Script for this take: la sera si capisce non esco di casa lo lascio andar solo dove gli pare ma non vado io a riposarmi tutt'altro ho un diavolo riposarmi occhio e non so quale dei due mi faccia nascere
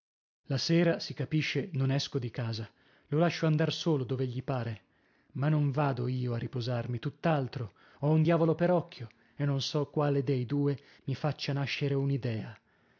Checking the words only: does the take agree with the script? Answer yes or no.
no